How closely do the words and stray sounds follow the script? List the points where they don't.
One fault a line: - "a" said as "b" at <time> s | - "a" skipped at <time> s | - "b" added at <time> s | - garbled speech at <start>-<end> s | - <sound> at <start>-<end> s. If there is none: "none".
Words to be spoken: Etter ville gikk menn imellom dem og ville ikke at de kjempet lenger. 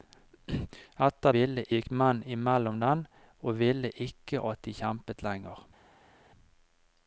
none